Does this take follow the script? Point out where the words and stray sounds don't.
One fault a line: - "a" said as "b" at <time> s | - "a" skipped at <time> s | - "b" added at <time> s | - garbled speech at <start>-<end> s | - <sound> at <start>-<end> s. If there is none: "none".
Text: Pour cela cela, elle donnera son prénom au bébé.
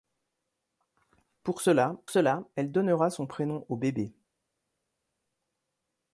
none